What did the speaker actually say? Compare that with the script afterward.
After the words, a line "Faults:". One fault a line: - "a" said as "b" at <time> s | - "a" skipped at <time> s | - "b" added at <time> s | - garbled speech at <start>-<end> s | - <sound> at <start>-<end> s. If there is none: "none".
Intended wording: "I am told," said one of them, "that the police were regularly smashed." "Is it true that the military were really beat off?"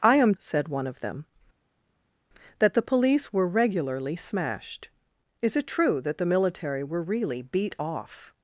"I am," said one of them, "that the police were regularly smashed." "Is it true that the military were really beat off?"
Faults:
- "told" skipped at 0.3 s